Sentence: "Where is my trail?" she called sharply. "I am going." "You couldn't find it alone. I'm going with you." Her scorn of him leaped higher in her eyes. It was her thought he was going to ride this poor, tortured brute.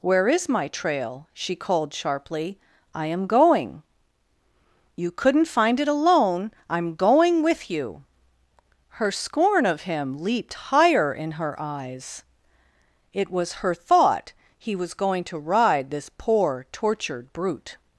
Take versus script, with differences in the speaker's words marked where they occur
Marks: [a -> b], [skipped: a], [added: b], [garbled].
"Where is my trail?" she called sharply. "I am going." "You couldn't find it alone. I'm going with you." Her scorn of him leaped higher in her eyes. It was her thought he was going to ride this poor, tortured brute.